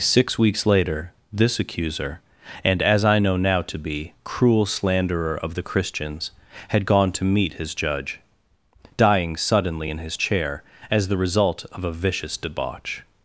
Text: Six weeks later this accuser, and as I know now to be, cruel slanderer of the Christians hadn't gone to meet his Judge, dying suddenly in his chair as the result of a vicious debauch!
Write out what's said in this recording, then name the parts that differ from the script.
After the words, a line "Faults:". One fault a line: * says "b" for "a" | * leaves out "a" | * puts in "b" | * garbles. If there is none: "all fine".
Six weeks later this accuser, and as I know now to be, cruel slanderer of the Christians had gone to meet his Judge, dying suddenly in his chair as the result of a vicious debauch!
Faults:
* says "had" for "hadn't"